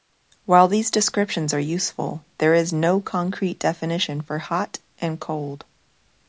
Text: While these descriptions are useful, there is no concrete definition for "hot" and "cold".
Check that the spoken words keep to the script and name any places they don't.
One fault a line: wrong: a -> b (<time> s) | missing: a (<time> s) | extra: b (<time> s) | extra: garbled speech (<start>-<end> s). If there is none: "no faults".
no faults